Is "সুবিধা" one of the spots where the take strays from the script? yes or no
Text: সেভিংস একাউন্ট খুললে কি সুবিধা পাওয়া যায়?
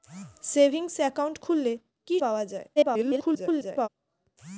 yes